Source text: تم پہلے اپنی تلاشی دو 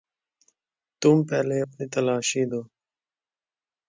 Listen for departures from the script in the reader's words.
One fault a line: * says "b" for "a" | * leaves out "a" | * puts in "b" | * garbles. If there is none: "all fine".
all fine